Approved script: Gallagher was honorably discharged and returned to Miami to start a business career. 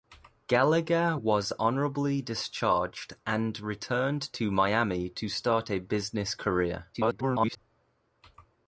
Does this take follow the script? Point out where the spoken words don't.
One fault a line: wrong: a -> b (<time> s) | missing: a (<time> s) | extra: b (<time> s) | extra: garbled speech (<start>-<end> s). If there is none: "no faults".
extra: garbled speech (6.9-7.6 s)